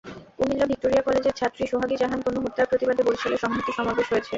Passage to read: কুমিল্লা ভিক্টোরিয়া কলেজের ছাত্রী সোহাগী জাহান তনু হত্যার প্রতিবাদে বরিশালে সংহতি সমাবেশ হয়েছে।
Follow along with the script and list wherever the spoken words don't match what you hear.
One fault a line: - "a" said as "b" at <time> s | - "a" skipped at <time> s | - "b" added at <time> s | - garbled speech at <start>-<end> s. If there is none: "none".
none